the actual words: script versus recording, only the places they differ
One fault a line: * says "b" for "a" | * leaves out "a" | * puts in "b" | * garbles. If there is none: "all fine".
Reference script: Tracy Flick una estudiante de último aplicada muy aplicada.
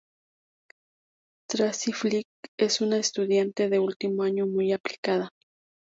* puts in "es"
* says "año" for "aplicada"